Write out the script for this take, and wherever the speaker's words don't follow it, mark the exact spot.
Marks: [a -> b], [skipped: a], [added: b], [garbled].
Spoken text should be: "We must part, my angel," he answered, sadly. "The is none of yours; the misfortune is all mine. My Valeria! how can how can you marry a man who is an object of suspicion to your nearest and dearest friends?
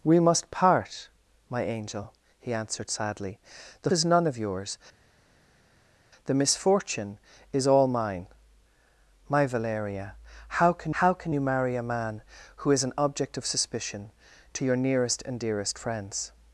"We must part, my angel," he answered, sadly. "The is none of yours; the misfortune is all mine. My Valeria! how can how can you marry a man who is an object of suspicion to your nearest and dearest friends?